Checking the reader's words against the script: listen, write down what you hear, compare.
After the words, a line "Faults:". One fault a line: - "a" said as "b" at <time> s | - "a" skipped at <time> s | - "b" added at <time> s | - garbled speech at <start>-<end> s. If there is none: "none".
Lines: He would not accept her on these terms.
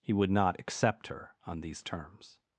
He would not accept her on these terms.
Faults:
none